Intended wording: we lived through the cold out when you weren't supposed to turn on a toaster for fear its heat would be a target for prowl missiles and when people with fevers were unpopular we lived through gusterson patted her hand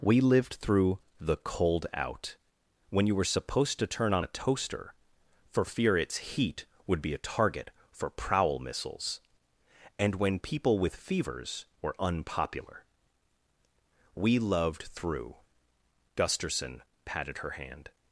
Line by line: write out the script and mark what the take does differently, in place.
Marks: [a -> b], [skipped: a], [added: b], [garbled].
we lived through the cold out when you [weren't -> were] supposed to turn on a toaster for fear its heat would be a target for prowl missiles and when people with fevers were unpopular we [lived -> loved] through gusterson patted her hand